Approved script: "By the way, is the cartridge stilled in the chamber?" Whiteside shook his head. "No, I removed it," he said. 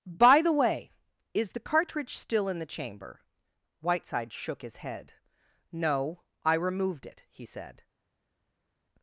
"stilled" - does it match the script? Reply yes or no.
no